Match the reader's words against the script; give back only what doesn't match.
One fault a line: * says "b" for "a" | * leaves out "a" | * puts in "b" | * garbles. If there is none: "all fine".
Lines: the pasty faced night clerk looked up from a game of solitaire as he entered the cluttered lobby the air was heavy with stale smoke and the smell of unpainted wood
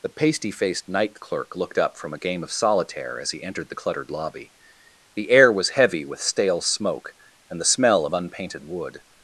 all fine